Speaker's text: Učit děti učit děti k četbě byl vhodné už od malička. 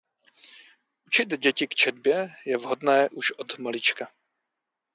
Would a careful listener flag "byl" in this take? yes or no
yes